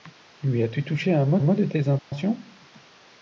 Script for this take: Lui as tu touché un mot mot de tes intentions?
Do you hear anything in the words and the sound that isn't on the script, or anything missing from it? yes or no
yes